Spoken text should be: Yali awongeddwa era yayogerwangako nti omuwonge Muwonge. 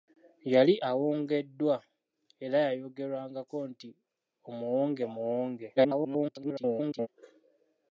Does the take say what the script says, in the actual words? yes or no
no